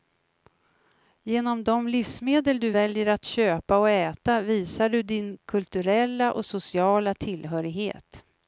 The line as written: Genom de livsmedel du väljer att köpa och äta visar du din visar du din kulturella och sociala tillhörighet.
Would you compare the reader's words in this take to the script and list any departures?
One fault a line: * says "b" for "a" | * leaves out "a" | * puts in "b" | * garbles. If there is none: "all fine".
* leaves out "visar du din"